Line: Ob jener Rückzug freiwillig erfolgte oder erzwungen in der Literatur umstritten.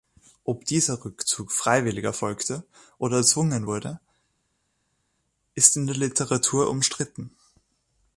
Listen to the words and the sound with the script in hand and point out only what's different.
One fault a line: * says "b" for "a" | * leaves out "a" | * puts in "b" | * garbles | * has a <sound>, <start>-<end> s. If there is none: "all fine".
* says "dieser" for "jener"
* puts in "wurde ist"